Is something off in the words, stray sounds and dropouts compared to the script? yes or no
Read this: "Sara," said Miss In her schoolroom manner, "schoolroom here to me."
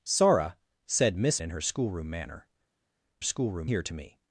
no